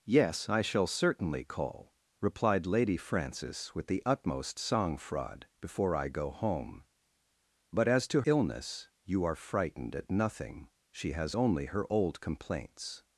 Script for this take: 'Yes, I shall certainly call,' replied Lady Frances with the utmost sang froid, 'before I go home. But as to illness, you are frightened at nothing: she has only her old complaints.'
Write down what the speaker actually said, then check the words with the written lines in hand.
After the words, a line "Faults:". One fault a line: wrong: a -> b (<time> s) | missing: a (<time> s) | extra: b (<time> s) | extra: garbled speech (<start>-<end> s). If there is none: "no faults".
'Yes, I shall certainly call,' replied Lady Frances with the utmost sang froid, 'before I go home. But as to illness, you are frightened at nothing: she has only her old complaints.'
Faults:
no faults